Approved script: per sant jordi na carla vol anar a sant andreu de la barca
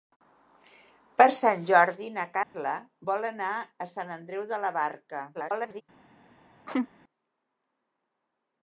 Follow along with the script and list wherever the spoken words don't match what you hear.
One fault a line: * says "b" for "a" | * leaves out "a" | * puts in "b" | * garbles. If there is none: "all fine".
* garbles